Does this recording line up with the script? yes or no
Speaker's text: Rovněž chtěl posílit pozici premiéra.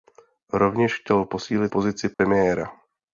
yes